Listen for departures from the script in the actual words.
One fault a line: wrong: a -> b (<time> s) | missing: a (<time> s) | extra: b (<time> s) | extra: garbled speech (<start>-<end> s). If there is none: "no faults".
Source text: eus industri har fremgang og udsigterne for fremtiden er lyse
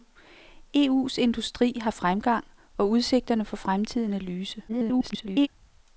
extra: garbled speech (4.7-5.5 s)